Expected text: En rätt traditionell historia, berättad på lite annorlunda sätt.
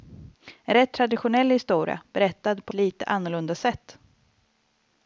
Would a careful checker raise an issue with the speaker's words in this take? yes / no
no